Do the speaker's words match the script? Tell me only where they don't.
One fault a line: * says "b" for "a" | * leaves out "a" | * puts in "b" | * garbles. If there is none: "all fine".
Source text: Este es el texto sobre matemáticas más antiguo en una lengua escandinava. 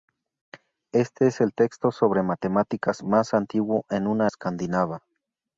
* leaves out "lengua"